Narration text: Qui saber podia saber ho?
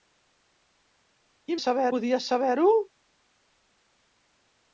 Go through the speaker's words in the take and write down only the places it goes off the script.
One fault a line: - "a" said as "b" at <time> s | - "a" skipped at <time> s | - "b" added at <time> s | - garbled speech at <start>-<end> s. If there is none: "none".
none